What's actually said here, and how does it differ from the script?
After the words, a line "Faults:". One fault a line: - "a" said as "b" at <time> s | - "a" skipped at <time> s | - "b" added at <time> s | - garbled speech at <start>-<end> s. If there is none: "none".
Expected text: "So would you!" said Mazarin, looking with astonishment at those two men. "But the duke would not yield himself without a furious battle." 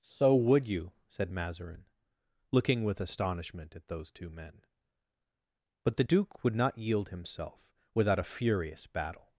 "So would you!" said Mazarin, looking with astonishment at those two men. "But the duke would not yield himself without a furious battle."
Faults:
none